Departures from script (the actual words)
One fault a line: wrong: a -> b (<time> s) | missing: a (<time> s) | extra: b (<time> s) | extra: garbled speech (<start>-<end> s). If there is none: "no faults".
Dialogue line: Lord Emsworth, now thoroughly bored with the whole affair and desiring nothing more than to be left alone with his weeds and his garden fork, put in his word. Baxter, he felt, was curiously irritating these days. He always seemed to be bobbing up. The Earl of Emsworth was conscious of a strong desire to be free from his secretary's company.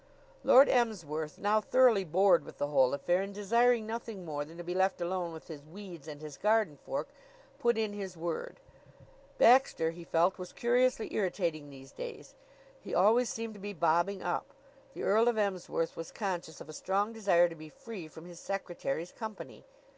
no faults